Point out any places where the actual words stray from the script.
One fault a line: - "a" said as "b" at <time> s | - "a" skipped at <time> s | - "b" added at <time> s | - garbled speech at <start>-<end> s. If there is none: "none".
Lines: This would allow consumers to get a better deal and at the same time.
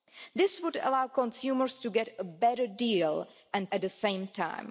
none